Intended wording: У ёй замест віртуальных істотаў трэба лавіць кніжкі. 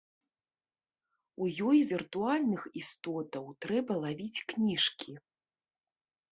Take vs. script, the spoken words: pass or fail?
fail